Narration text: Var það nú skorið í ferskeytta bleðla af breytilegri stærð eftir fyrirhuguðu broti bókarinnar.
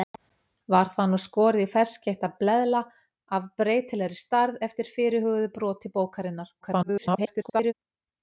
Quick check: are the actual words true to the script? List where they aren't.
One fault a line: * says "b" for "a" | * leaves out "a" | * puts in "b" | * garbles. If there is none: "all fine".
* garbles